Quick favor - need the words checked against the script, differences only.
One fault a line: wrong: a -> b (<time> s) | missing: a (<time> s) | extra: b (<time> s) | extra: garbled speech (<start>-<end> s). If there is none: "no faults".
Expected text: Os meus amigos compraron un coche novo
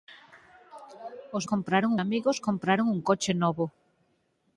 wrong: meus -> compraron (1.5 s)